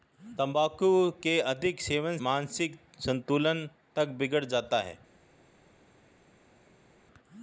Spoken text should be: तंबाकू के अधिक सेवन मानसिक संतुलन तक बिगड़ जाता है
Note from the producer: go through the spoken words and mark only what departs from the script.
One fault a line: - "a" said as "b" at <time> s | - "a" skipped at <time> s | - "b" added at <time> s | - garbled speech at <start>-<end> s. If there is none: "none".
none